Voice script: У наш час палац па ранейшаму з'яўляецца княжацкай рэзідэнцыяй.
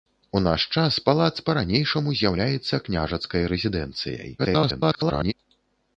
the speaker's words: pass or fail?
fail